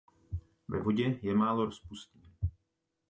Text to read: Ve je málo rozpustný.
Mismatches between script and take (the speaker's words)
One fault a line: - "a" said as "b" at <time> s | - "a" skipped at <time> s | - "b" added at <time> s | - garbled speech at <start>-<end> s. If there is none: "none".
- "vodě" added at 0.8 s